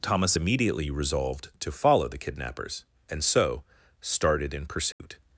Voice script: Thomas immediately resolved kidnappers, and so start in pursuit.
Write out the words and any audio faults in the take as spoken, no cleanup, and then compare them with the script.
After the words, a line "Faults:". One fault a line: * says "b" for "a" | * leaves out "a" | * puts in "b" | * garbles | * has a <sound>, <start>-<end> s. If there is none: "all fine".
Thomas immediately resolved to follow the kidnappers, and so started in pursuit.
Faults:
* puts in "to follow the"
* says "started" for "start"
* has a dropout, 4.9-5.0 s